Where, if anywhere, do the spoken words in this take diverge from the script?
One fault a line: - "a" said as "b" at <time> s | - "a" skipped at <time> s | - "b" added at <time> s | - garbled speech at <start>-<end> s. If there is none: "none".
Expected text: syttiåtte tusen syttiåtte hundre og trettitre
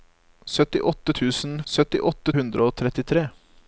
none